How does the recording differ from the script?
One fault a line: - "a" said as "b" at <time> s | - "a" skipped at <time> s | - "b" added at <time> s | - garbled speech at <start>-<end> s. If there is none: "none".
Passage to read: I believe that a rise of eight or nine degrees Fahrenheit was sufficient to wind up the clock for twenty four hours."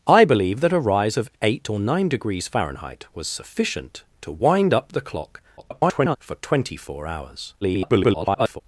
- garbled speech at 5.6-6.2 s
- garbled speech at 7.6-8.6 s